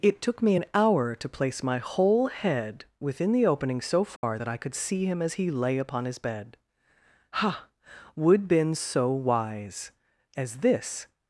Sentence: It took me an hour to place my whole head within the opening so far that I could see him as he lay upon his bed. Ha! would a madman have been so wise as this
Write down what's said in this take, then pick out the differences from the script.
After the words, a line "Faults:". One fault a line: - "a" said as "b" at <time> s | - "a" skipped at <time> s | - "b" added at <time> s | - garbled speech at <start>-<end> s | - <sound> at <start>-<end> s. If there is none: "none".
It took me an hour to place my whole head within the opening so far that I could see him as he lay upon his bed. Ha! would been so wise as this
Faults:
- dropout at 4.2-4.2 s
- "a madman have" skipped at 8.5 s